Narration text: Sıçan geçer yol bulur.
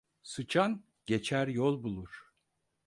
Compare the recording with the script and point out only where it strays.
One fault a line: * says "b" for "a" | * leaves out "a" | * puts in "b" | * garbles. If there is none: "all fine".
all fine